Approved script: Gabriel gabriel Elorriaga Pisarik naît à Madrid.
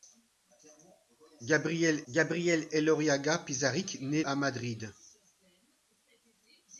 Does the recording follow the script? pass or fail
pass